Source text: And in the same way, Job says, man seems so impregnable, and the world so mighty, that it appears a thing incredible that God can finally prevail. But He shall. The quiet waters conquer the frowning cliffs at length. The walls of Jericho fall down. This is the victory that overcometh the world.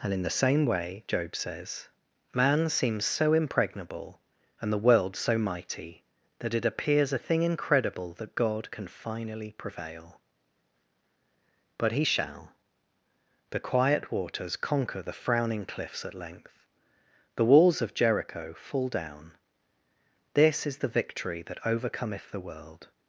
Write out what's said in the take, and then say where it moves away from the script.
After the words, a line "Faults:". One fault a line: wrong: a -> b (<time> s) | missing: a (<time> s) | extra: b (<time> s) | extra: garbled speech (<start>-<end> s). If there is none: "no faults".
And in the same way, Job says, man seems so impregnable, and the world so mighty, that it appears a thing incredible that God can finally prevail. But He shall. The quiet waters conquer the frowning cliffs at length. The walls of Jericho fall down. This is the victory that overcometh the world.
Faults:
no faults